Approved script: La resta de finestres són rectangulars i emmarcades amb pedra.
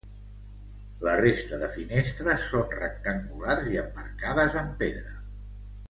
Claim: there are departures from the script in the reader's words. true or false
false